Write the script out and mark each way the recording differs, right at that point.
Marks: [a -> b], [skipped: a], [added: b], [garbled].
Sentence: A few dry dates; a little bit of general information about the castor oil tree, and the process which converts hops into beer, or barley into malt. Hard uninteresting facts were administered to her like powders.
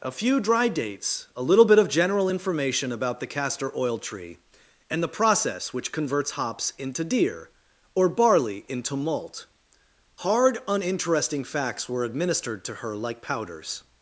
A few dry dates; a little bit of general information about the castor oil tree, and the process which converts hops into [beer, -> deer] or barley into malt. Hard uninteresting facts were administered to her like powders.